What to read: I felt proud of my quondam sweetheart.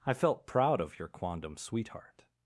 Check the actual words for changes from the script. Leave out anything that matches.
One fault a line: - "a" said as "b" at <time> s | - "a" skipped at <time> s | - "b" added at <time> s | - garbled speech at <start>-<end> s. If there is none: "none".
- "my" said as "your" at 1.0 s